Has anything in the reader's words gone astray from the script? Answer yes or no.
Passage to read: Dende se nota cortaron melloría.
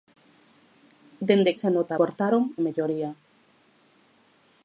no